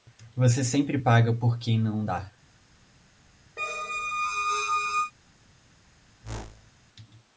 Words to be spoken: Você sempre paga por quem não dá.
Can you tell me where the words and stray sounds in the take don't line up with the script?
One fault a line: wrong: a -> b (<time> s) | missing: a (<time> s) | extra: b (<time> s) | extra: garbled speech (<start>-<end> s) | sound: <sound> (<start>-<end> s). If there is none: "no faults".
sound: squeak (3.6-5.1 s)
sound: whoosh (6.2-6.7 s)